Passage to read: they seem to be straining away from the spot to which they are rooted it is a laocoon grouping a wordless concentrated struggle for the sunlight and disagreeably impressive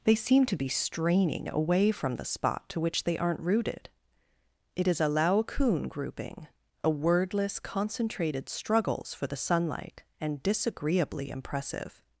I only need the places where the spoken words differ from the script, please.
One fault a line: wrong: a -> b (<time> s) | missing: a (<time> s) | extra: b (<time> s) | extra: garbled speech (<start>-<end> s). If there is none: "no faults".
wrong: are -> aren't (3.2 s)
wrong: struggle -> struggles (8.5 s)